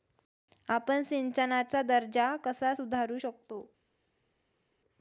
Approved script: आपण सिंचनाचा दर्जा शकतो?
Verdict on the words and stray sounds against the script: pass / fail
fail